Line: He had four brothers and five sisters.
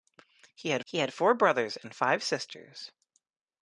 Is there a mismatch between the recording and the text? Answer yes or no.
yes